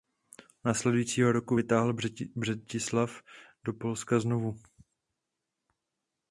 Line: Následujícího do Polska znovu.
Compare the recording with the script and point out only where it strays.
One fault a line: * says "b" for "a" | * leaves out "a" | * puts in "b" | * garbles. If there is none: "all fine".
* puts in "roku vytáhl Břetislav"